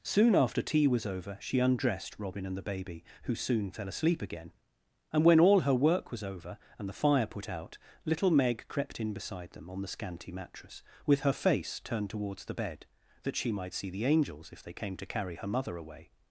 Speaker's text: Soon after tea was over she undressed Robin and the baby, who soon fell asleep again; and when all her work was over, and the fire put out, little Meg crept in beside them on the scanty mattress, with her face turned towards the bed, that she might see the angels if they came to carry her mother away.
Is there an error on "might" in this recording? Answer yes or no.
no